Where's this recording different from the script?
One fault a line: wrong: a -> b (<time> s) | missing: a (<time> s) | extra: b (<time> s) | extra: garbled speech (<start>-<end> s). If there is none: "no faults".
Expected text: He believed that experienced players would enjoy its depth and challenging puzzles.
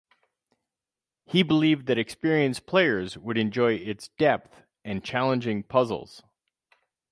no faults